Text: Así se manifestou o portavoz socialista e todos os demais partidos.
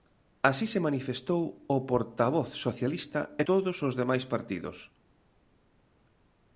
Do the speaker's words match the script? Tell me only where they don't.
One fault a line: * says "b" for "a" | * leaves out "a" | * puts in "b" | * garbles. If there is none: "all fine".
all fine